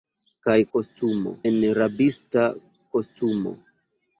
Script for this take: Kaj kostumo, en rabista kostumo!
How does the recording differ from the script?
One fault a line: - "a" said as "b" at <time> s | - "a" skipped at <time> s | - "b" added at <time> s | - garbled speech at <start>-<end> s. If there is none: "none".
none